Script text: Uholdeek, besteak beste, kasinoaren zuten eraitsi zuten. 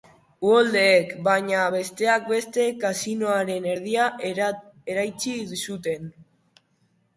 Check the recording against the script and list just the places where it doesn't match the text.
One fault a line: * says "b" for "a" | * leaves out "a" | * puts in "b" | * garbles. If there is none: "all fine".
* puts in "baina"
* says "erdia" for "zuten"